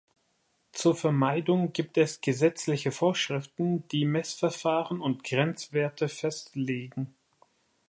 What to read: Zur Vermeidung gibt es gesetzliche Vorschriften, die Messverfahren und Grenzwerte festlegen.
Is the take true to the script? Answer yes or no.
yes